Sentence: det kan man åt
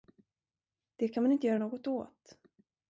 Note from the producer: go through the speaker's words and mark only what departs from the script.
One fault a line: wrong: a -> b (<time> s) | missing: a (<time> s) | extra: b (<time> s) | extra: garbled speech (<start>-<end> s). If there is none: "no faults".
extra: inte göra något (1.3 s)